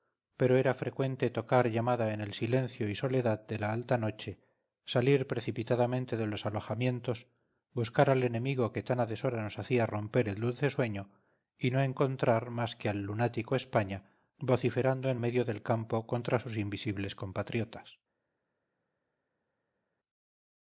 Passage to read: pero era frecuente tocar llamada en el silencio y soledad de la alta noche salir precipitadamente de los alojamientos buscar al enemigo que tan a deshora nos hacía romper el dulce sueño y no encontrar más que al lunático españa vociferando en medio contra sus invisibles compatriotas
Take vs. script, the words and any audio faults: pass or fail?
fail